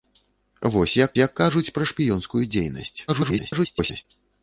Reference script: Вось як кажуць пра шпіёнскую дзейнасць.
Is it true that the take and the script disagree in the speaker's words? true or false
true